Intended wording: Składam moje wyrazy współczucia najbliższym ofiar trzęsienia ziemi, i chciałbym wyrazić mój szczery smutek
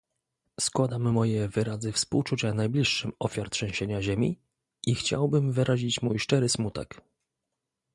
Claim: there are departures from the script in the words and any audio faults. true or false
false